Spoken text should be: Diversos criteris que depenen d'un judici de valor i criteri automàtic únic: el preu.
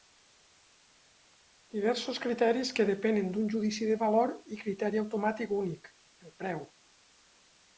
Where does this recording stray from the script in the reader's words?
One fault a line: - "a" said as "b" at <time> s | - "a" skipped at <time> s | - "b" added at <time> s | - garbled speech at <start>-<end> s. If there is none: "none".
none